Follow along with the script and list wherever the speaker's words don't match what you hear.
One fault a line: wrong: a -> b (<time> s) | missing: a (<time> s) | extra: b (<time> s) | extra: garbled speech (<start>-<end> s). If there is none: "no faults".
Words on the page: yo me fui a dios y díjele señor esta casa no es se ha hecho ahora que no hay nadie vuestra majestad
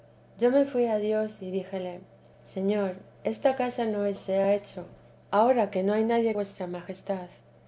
no faults